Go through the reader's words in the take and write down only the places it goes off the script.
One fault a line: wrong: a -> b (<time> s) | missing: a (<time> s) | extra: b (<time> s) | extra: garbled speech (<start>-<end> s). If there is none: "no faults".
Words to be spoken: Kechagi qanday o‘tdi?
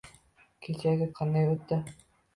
no faults